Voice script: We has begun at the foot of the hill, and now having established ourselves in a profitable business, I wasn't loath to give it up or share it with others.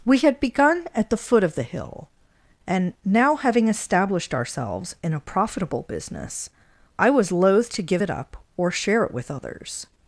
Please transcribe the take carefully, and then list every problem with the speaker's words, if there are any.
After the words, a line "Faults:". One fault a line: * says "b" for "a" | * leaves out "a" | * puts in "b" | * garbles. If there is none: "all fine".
We had begun at the foot of the hill, and now having established ourselves in a profitable business, I was loath to give it up or share it with others.
Faults:
* says "had" for "has"
* says "was" for "wasn't"